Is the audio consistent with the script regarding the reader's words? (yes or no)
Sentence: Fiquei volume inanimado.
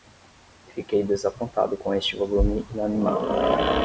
no